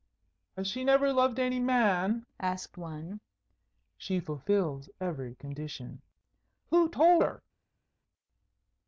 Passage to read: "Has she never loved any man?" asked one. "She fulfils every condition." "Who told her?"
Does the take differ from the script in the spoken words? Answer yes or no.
no